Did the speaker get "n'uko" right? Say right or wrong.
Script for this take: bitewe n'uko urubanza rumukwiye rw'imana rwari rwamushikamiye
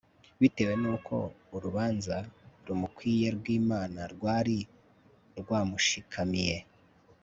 right